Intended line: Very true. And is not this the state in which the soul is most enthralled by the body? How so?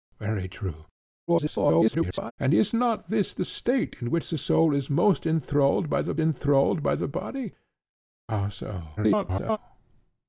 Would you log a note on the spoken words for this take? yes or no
yes